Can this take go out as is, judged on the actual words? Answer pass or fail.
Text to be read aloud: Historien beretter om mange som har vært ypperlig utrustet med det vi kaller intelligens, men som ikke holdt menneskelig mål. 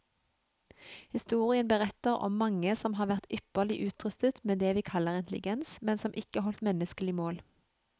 pass